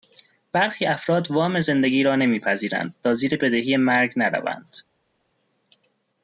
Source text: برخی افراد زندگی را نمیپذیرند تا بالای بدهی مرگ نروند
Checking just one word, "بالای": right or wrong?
wrong